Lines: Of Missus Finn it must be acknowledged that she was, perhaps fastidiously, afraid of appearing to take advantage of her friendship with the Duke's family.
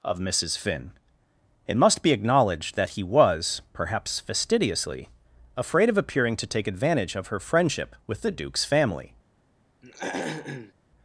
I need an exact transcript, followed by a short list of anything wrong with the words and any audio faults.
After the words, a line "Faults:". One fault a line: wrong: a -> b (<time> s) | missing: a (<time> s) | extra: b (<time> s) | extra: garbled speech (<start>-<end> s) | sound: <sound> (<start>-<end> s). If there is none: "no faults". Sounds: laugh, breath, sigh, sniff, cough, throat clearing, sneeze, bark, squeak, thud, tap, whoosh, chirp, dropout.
Of Missus Finn it must be acknowledged that he was, perhaps fastidiously, afraid of appearing to take advantage of her friendship with the Duke's family.
Faults:
wrong: she -> he (2.9 s)
sound: throat clearing (9.8-10.7 s)